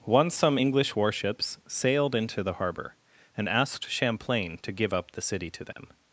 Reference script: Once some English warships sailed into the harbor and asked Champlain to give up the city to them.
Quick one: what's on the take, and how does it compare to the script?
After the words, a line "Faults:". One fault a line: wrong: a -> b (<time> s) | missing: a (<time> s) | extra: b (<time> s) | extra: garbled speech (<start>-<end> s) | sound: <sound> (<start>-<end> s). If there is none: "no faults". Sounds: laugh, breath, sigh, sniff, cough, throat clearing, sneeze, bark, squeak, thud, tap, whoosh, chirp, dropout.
Once some English warships sailed into the harbor and asked Champlain to give up the city to them.
Faults:
sound: dropout (5.7-5.8 s)